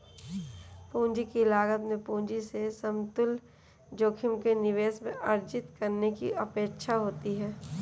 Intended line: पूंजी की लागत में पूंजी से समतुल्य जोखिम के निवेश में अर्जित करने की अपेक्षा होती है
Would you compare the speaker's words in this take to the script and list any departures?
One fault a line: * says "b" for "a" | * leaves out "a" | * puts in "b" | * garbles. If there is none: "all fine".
all fine